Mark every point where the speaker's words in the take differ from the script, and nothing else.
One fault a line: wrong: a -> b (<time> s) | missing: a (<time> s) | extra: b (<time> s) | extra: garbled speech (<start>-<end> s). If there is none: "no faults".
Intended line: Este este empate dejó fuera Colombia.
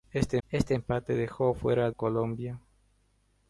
no faults